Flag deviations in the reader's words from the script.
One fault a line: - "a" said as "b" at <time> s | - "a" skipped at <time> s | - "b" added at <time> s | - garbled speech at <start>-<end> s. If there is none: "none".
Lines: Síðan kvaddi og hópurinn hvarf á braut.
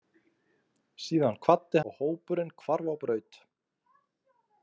none